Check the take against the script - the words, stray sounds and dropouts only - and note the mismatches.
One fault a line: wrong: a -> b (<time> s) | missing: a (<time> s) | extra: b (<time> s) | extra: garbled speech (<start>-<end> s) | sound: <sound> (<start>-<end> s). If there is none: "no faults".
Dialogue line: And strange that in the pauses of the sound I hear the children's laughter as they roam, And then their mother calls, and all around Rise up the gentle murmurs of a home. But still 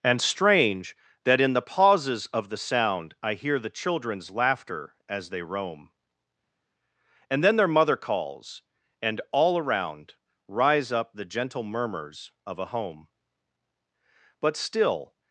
no faults